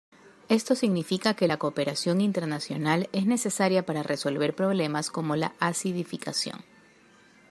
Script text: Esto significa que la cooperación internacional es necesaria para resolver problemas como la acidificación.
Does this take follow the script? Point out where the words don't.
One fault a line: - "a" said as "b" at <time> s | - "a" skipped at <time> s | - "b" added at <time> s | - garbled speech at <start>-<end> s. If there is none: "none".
none